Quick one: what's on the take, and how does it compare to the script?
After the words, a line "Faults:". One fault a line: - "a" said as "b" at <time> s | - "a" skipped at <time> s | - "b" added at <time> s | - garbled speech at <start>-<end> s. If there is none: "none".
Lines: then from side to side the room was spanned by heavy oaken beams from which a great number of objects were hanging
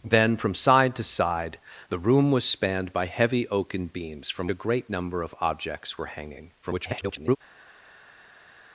then from side to side the room was spanned by heavy oaken beams from a great number of objects were hanging [garbled]
Faults:
- "which" skipped at 4.5 s
- garbled speech at 6.6-7.4 s